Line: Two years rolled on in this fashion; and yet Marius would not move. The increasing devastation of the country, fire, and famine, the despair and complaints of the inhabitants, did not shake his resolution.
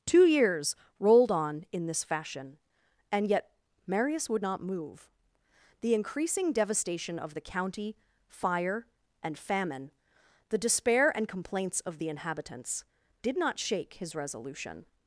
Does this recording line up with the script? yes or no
no